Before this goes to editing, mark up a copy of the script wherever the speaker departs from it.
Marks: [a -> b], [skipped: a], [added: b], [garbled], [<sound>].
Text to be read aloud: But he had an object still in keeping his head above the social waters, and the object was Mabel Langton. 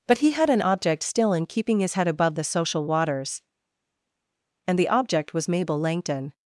But he had an object still in keeping his head above the social waters, and the object was Mabel Langton.